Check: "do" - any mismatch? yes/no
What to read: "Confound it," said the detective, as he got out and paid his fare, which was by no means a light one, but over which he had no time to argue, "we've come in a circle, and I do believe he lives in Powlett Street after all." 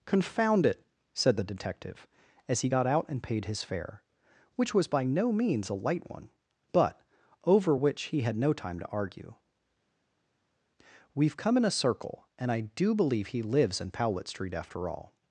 no